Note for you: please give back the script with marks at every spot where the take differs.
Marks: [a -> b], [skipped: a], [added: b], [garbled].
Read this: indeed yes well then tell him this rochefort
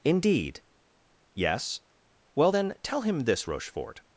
indeed yes well then tell him this rochefort